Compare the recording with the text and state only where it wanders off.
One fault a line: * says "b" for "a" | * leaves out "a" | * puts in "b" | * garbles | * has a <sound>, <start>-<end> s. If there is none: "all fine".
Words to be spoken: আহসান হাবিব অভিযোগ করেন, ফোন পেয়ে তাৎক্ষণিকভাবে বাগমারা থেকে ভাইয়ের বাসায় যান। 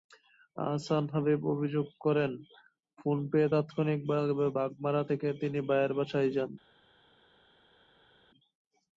* puts in "তিনি"